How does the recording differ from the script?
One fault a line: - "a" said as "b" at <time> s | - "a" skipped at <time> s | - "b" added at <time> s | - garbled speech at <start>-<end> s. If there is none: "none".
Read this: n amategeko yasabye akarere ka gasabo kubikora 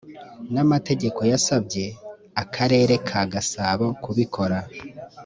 none